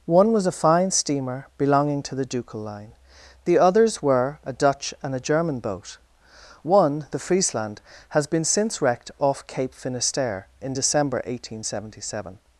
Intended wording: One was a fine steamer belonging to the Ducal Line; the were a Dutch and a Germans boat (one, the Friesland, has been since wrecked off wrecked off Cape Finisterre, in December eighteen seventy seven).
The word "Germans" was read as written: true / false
false